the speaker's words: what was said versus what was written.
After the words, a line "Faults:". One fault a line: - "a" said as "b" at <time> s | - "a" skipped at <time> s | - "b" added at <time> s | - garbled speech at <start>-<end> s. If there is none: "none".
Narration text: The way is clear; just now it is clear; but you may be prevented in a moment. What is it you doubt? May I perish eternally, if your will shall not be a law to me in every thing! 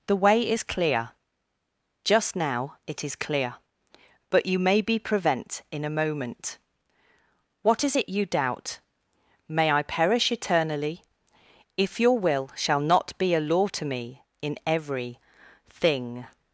The way is clear; just now it is clear; but you may be prevent in a moment. What is it you doubt? May I perish eternally, if your will shall not be a law to me in every thing!
Faults:
- "prevented" said as "prevent" at 5.0 s